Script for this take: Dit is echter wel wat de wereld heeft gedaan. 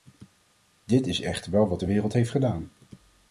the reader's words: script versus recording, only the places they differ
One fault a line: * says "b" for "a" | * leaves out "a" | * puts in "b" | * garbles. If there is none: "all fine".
all fine